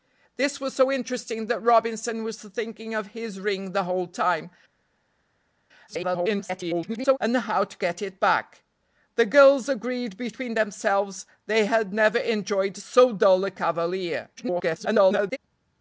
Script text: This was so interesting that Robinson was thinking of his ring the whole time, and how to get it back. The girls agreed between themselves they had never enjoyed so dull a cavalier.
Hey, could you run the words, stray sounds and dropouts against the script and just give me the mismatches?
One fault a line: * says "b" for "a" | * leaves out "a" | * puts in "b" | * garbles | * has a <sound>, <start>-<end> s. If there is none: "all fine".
* garbles
* garbles